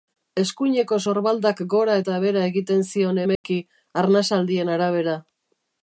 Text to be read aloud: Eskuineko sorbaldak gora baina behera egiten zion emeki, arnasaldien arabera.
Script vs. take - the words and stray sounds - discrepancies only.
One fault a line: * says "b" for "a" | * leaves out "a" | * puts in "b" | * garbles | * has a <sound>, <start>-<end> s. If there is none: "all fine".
* says "eta" for "baina"
* has a dropout, 3.4-3.4 s